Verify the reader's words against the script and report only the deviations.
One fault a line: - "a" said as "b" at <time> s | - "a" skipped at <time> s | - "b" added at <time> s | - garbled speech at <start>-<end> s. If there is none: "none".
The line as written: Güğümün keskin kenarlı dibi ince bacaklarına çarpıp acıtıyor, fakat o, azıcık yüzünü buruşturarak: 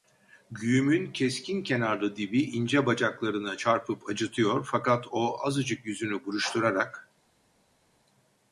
none